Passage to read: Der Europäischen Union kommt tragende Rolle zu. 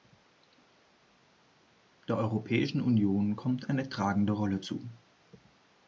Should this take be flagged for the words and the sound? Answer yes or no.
yes